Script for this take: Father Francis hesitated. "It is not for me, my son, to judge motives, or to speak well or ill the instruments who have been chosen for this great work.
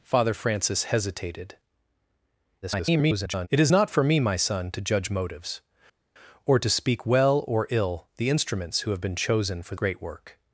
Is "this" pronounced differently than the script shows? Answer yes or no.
yes